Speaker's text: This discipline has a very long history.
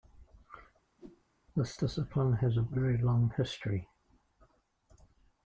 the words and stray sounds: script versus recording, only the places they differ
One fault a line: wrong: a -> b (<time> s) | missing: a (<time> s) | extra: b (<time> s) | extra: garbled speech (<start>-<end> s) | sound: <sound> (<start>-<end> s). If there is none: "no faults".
sound: whoosh (1.0-1.2 s)